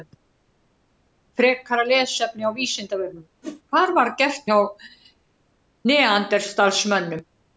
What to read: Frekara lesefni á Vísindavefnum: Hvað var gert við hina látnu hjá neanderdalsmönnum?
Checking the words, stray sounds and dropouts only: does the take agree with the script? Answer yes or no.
no